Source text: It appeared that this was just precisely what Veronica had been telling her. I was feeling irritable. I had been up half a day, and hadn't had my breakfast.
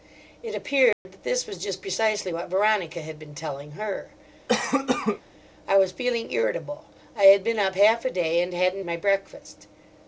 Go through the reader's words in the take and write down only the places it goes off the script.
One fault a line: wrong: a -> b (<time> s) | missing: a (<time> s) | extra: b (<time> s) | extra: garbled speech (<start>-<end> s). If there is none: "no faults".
missing: had (8.8 s)